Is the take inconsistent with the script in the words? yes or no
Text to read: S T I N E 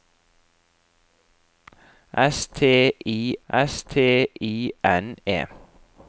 yes